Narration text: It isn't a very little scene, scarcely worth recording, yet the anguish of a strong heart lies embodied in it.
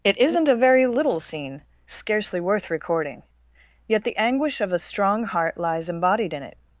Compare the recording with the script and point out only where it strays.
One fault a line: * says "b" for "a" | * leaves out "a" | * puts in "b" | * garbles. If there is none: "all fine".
all fine